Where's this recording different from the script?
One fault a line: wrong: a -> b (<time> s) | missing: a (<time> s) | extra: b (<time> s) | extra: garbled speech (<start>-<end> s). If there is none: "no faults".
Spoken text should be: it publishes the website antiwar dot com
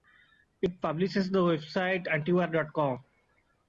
no faults